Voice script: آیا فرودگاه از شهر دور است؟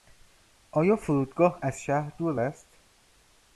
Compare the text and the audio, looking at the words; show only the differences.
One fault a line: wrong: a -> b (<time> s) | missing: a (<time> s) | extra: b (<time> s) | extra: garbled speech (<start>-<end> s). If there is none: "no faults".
no faults